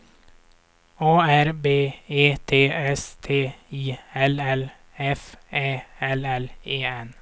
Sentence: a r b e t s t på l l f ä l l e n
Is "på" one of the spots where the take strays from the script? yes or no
yes